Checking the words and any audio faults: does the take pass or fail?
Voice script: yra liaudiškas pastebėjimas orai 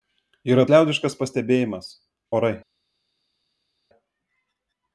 pass